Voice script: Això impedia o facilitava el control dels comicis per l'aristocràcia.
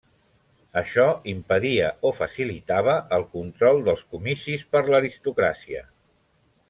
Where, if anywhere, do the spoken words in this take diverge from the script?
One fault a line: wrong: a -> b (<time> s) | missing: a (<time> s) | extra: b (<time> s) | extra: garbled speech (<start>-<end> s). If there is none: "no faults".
no faults